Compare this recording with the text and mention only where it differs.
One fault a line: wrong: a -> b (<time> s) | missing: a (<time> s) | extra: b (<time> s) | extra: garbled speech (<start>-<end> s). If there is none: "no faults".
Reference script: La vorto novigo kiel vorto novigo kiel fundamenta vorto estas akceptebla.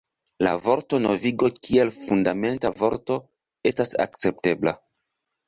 missing: vorto novigo kiel (1.9 s)